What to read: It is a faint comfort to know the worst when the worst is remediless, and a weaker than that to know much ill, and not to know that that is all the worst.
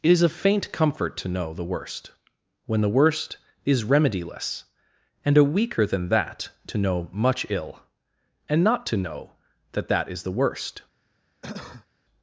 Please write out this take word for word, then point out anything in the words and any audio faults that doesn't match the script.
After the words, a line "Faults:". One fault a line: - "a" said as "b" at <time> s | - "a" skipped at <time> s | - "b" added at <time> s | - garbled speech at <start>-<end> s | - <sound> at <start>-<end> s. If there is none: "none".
It is a faint comfort to know the worst when the worst is remediless, and a weaker than that to know much ill, and not to know that that is the worst.
Faults:
- "all" skipped at 10.2 s
- cough at 11.4-11.9 s